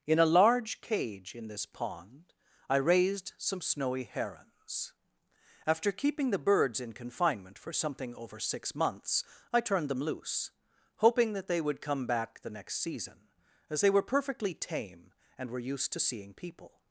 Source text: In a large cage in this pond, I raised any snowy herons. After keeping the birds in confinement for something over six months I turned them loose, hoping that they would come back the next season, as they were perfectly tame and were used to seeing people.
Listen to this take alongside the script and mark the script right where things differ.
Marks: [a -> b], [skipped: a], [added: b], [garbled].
In a large cage in this pond, I raised [any -> some] snowy herons. After keeping the birds in confinement for something over six months I turned them loose, hoping that they would come back the next season, as they were perfectly tame and were used to seeing people.